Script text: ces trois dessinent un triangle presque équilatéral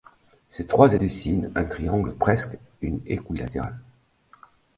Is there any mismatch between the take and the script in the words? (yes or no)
no